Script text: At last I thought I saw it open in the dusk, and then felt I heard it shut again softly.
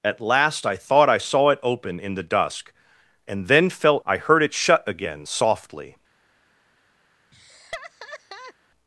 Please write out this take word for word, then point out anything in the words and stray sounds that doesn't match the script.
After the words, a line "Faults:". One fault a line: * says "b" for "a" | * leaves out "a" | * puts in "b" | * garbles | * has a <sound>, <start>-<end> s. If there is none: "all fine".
At last I thought I saw it open in the dusk, and then felt I heard it shut again softly.
Faults:
* has a laugh, 7.3-8.5 s